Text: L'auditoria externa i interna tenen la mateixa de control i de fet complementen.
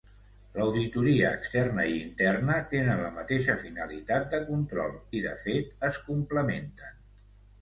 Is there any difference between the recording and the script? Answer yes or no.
yes